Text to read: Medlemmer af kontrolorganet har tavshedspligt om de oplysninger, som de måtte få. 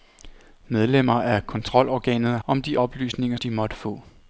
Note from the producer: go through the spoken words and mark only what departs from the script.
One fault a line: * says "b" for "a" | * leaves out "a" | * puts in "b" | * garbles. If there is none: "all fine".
* leaves out "har tavshedspligt"
* leaves out "som"